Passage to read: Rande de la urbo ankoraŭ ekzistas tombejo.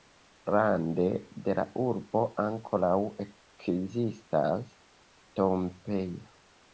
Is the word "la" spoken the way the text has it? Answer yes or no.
yes